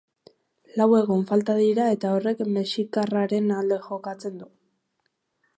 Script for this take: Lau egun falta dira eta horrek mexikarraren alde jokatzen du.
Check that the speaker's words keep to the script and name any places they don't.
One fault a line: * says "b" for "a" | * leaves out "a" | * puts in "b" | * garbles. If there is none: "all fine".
all fine